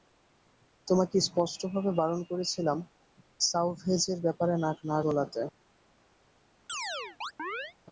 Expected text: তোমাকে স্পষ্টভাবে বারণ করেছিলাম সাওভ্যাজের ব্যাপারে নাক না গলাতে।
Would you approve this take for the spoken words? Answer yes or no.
yes